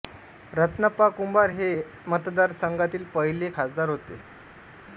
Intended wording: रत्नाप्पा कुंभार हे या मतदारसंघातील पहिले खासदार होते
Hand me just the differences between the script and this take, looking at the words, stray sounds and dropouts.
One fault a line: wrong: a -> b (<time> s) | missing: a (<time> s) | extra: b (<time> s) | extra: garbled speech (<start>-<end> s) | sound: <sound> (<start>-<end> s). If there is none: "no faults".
no faults